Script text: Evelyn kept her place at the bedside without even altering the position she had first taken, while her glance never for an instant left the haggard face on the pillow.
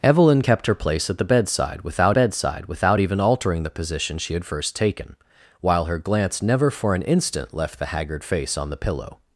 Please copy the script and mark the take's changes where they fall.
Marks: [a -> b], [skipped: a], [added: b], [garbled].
Evelyn kept her place at the bedside without [added: bedside without] even altering the position she had first taken, while her glance never for an instant left the haggard face on the pillow.